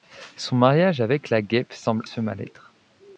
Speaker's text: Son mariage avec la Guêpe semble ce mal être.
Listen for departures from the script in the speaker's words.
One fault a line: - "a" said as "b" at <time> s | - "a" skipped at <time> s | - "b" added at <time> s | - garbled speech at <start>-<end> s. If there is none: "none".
none